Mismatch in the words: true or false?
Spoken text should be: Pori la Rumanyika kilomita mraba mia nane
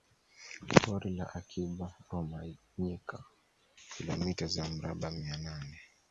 true